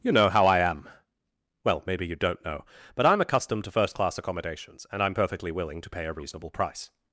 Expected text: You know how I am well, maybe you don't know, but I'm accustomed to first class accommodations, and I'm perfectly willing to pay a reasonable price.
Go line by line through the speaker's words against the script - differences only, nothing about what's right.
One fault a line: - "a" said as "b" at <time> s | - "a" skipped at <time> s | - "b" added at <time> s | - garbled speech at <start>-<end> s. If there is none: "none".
none